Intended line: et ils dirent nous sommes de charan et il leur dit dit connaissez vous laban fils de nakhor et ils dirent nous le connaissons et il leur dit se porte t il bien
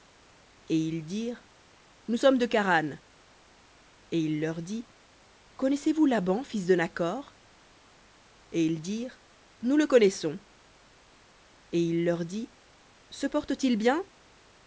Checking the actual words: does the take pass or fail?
fail